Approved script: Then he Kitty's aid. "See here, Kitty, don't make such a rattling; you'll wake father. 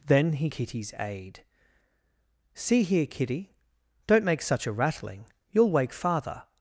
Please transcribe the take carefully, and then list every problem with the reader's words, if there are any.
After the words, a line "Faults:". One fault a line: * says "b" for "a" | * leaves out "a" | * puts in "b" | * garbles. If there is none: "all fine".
Then he Kitty's aid. "See here, Kitty, don't make such a rattling; you'll wake father.
Faults:
all fine